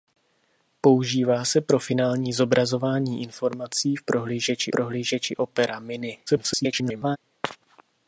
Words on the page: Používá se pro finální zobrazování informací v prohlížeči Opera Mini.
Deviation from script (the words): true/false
true